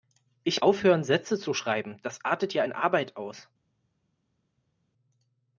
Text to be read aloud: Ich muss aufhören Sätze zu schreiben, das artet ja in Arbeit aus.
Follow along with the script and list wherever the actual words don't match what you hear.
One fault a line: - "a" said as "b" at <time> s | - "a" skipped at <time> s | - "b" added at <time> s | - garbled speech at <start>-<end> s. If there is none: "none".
- "muss" skipped at 0.6 s